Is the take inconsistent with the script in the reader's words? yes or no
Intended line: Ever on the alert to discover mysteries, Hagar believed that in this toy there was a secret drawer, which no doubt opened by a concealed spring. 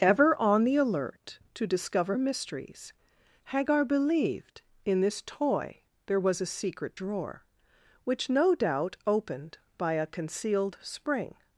yes